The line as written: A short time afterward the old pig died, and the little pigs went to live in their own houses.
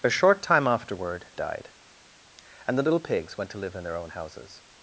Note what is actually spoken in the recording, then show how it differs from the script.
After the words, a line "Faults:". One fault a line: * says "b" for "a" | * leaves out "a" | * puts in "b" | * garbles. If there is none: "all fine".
A short time afterward died, and the little pigs went to live in their own houses.
Faults:
* leaves out "the old pig"